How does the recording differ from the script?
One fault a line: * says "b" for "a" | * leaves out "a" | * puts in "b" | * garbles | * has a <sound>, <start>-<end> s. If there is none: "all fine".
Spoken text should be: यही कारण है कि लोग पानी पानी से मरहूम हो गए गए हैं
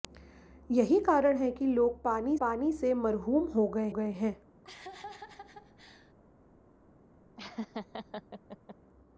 * has a laugh, 4.6-6.1 s
* has a laugh, 7.4-8.8 s